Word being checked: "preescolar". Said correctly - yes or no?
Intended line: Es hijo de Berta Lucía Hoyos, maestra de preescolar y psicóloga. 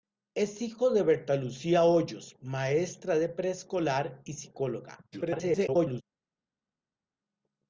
yes